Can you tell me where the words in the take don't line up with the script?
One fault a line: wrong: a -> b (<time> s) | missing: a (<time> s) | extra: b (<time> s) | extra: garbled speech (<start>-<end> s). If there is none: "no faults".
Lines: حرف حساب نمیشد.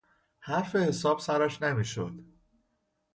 extra: سرش (1.2 s)